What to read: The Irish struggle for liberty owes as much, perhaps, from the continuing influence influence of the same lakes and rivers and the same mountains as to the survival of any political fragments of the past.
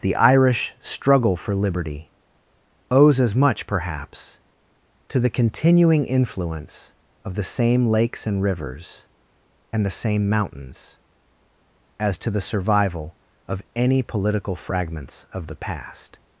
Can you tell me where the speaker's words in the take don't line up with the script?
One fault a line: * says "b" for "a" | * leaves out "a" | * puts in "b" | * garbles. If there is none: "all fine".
* says "to" for "from"
* leaves out "influence"